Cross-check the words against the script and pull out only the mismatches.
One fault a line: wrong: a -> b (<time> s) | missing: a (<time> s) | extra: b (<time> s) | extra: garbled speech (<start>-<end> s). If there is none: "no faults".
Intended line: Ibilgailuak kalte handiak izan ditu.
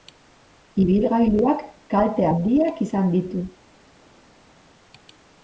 no faults